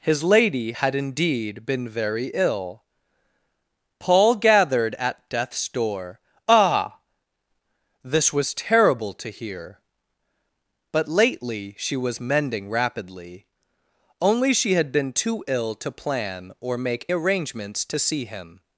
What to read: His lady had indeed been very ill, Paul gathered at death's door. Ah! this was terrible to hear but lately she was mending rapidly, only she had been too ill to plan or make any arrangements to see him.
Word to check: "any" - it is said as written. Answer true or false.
false